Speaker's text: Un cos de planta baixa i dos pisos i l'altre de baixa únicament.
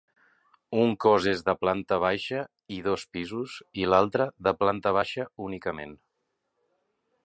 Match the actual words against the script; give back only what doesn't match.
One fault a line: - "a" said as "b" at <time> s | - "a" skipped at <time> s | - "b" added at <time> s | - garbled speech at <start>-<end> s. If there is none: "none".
- "és" added at 1.3 s
- "planta" added at 4.7 s